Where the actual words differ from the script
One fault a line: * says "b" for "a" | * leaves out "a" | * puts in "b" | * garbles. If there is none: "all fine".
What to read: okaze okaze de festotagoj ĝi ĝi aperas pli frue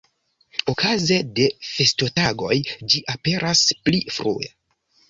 * leaves out "okaze"
* leaves out "ĝi"